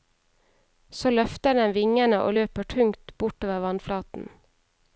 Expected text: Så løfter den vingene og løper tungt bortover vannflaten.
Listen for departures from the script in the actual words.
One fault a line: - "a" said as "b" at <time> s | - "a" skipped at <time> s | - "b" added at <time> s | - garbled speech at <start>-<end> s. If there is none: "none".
none